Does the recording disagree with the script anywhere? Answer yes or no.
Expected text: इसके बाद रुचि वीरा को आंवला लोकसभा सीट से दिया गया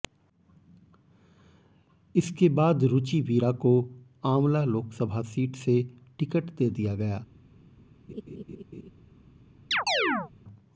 yes